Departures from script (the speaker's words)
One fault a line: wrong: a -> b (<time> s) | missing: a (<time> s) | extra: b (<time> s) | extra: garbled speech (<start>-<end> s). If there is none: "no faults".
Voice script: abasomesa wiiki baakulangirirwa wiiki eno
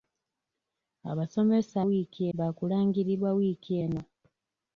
no faults